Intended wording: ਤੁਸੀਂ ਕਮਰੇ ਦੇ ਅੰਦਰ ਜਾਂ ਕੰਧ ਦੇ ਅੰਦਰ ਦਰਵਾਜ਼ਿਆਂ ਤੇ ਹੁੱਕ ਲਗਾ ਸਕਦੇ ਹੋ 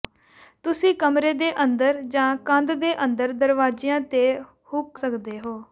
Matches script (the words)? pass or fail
fail